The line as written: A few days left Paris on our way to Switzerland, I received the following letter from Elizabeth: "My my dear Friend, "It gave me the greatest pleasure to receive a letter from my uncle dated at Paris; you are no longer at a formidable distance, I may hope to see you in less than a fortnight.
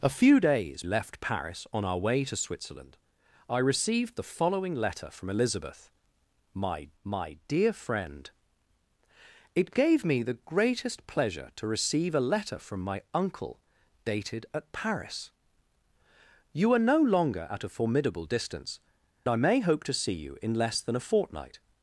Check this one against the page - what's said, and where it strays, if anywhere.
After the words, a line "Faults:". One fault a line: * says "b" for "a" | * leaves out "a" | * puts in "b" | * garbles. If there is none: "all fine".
A few days left Paris on our way to Switzerland, I received the following letter from Elizabeth: "My my dear Friend, "It gave me the greatest pleasure to receive a letter from my uncle dated at Paris; you are no longer at a formidable distance, I may hope to see you in less than a fortnight.
Faults:
all fine